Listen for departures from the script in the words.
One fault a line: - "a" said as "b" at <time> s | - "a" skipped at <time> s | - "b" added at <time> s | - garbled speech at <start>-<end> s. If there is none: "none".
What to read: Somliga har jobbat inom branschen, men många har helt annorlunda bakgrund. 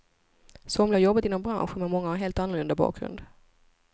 none